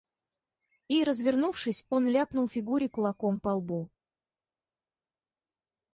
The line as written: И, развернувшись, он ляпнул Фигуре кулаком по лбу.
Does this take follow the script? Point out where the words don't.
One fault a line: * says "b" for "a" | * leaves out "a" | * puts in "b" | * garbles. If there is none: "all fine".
all fine